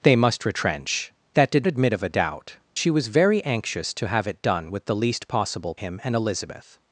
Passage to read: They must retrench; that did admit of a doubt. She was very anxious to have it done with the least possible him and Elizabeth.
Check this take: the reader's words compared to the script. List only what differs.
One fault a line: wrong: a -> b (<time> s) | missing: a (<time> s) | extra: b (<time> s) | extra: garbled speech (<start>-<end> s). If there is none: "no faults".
no faults